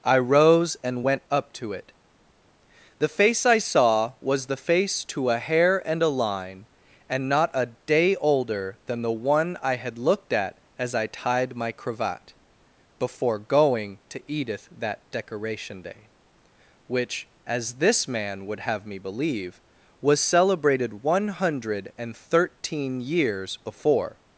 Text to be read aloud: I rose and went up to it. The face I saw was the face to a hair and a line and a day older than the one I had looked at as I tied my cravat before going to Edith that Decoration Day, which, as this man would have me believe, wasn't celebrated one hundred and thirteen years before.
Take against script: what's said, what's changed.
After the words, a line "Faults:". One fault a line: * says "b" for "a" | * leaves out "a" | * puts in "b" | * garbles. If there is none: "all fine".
I rose and went up to it. The face I saw was the face to a hair and a line and not a day older than the one I had looked at as I tied my cravat before going to Edith that Decoration Day, which, as this man would have me believe, was celebrated one hundred and thirteen years before.
Faults:
* puts in "not"
* says "was" for "wasn't"